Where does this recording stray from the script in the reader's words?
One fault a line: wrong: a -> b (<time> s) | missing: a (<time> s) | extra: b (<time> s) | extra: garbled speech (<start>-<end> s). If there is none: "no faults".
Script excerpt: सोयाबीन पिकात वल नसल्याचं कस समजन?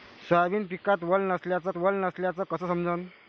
extra: वल नसल्याचं (1.8 s)